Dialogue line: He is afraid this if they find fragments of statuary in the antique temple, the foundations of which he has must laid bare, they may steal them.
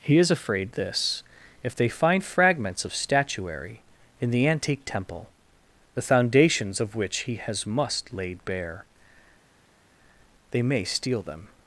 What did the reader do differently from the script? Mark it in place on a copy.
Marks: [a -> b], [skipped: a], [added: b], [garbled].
He is afraid this if they find fragments of statuary in the antique temple, the foundations of which he has must laid bare, they may steal them.